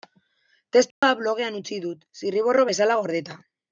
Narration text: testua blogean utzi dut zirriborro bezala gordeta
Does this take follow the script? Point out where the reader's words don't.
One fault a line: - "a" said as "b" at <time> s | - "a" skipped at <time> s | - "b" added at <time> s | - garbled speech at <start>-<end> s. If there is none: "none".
none